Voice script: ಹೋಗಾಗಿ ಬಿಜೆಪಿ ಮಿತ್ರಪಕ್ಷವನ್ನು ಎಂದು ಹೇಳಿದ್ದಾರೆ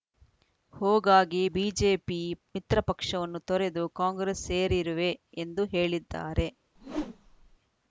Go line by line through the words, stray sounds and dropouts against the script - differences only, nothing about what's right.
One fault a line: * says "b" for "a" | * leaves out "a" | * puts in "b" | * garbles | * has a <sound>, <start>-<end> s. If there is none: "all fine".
* puts in "ತೊರೆದು ಕಾಂಗ್ರೆಸ್ ಸೇರಿರುವೆ"
* has a whoosh, 6.8-7.6 s